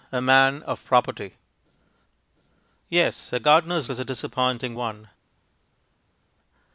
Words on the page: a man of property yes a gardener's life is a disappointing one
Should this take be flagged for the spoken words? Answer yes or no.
yes